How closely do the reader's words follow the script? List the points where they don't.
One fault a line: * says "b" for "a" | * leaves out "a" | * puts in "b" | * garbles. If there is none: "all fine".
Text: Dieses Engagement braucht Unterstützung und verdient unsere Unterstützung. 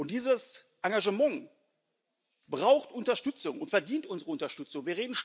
all fine